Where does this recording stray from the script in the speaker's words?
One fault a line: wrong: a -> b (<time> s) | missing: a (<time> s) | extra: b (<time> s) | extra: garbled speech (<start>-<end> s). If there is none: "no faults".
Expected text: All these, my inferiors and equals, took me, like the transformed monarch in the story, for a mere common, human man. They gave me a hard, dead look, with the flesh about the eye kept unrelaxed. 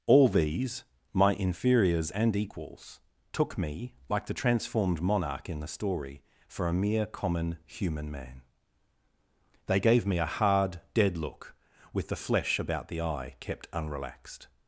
no faults